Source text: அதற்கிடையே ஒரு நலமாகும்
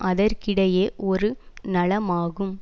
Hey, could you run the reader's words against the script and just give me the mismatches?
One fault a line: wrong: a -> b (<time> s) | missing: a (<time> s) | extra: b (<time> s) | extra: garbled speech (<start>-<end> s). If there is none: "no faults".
no faults